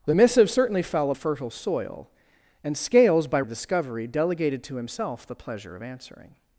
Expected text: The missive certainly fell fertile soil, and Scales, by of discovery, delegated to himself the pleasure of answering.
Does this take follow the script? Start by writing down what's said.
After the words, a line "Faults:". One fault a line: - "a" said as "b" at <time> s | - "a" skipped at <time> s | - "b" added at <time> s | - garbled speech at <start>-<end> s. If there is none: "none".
The missive certainly fell fertile soil, and Scales, by of discovery, delegated to himself the pleasure of answering.
Faults:
none